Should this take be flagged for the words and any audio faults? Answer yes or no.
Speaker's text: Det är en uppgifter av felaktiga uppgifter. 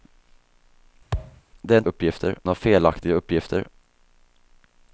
yes